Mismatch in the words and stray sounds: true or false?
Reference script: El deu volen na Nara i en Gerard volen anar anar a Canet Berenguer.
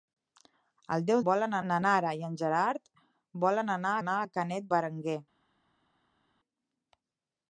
false